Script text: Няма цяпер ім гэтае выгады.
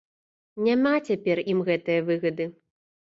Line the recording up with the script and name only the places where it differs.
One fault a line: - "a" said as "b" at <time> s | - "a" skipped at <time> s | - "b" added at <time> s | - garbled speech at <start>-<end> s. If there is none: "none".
none